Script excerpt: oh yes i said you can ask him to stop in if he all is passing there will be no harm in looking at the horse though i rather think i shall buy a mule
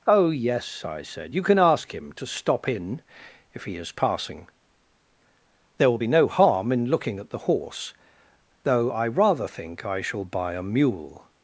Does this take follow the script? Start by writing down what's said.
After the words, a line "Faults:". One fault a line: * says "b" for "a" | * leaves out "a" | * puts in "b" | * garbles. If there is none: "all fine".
oh yes i said you can ask him to stop in if he is passing there will be no harm in looking at the horse though i rather think i shall buy a mule
Faults:
* leaves out "all"